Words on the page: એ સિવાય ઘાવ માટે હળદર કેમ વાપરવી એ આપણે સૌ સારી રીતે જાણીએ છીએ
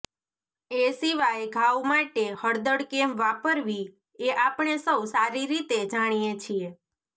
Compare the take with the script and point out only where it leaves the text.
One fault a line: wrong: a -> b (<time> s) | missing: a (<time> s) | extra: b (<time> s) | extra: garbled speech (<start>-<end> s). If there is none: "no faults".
no faults